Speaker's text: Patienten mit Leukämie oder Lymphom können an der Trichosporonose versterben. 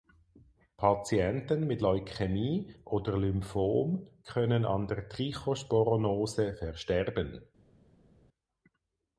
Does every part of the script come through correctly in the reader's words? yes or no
yes